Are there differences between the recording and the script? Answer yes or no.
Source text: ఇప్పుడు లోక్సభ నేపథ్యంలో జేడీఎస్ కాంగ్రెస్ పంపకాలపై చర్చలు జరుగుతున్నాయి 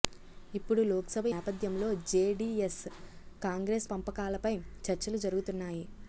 no